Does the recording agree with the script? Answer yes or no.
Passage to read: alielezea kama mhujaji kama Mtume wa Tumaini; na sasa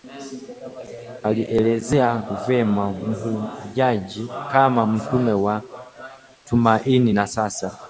no